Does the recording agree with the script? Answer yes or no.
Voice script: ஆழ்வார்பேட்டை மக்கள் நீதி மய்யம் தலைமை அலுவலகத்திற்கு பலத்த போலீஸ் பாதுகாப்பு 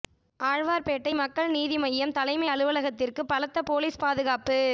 yes